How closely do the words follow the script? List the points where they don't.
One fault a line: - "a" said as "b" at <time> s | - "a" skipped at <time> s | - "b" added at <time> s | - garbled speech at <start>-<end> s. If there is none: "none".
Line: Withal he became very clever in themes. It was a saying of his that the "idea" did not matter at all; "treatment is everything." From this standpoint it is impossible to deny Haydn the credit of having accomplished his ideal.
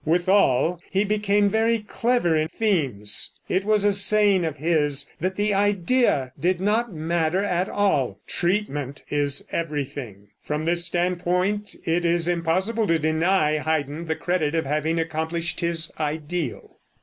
none